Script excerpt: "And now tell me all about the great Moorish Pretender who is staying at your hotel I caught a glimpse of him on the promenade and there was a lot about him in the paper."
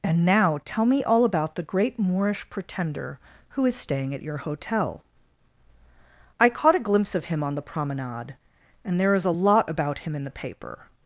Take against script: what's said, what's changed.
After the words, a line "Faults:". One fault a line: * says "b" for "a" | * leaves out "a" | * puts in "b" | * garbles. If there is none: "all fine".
"And now tell me all about the great Moorish Pretender who is staying at your hotel I caught a glimpse of him on the promenade and there is a lot about him in the paper."
Faults:
* says "is" for "was"